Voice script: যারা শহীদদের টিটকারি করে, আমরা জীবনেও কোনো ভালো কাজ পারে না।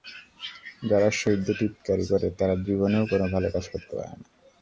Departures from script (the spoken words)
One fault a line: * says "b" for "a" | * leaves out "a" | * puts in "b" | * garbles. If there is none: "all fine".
* says "তারা" for "আমরা"
* puts in "করতে"